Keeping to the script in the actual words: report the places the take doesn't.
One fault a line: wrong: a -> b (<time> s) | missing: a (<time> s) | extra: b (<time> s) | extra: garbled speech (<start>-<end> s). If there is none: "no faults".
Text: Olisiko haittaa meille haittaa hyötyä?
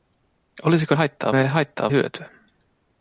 no faults